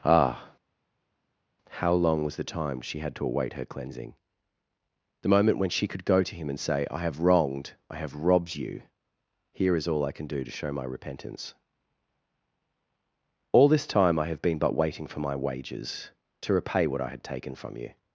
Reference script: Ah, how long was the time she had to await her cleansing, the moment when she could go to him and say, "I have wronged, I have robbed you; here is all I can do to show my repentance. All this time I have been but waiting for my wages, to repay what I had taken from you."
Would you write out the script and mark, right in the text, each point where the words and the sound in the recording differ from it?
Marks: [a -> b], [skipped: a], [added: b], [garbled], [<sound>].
Ah, how long was the time she had to await her cleansing, the moment when she could go to him and say, "I have wronged, I have robbed you; here is all I can do to show my repentance. All this time I have been but waiting for my wages, to repay what I had taken from you."